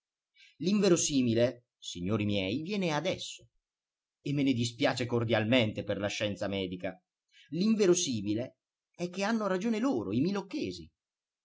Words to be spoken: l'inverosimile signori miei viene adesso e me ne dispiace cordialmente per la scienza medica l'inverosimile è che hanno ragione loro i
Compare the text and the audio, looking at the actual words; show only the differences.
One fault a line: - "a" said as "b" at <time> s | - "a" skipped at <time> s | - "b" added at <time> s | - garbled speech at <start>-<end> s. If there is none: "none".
none